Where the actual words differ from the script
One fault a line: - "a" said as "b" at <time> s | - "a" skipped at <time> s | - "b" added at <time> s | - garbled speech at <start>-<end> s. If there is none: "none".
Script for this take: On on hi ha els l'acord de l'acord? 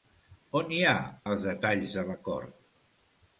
- "on" skipped at 0.7 s
- "l'acord" said as "detalls" at 1.5 s